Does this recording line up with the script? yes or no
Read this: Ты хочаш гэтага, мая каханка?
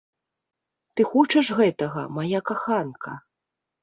yes